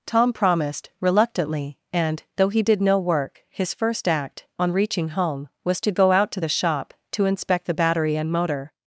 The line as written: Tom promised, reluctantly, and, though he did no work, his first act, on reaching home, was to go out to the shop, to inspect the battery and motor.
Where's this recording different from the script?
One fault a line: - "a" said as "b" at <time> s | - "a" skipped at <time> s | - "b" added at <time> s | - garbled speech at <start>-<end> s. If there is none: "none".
none